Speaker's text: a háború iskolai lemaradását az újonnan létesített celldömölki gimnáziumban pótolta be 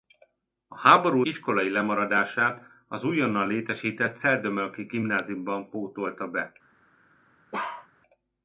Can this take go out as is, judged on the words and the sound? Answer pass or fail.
fail